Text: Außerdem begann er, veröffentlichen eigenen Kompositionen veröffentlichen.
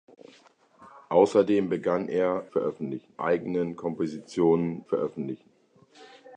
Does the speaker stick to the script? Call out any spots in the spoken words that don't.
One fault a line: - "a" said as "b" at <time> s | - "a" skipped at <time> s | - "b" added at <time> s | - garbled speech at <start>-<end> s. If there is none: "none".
none